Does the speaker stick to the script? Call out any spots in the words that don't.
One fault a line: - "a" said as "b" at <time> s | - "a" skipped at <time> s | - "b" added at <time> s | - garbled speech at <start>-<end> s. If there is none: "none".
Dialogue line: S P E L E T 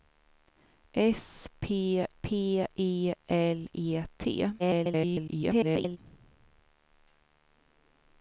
- "P" added at 2.2 s
- garbled speech at 4.6-6.0 s